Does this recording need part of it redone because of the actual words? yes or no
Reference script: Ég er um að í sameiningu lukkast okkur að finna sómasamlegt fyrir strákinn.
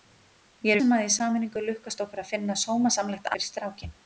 no